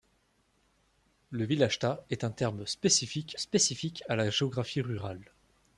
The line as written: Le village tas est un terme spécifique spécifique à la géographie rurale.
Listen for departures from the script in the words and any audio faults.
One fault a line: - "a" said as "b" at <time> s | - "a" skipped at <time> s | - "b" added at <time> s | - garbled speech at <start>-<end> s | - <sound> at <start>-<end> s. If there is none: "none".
none